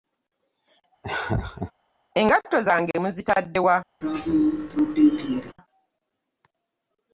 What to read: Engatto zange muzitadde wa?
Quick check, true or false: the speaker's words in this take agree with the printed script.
true